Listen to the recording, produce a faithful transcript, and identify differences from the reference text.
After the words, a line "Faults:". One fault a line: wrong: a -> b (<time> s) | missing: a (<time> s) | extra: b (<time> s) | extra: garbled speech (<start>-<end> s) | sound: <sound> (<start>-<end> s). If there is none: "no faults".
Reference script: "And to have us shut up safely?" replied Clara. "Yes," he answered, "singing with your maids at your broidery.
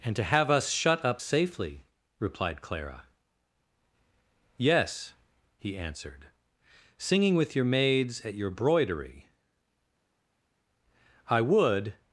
"And to have us shut up safely?" replied Clara. "Yes," he answered, "singing with your maids at your broidery. I would
Faults:
extra: I would (11.3 s)